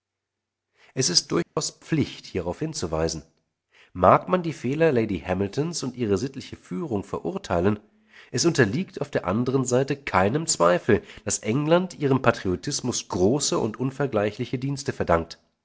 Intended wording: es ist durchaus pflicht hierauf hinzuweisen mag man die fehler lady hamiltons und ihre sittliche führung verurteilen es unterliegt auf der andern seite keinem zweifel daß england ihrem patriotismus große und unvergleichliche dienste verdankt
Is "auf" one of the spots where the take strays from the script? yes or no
no